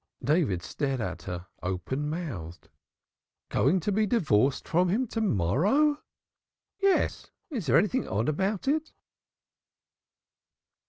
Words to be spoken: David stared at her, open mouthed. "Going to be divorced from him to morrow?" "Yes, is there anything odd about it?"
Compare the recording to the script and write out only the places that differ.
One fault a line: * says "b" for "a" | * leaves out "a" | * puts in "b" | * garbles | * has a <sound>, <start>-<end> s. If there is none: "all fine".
all fine